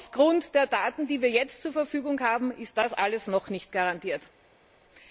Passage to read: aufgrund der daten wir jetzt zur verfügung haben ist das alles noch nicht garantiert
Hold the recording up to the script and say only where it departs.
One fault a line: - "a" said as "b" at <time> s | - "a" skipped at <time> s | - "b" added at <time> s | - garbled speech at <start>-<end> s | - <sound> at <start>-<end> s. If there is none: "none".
- "die" added at 1.1 s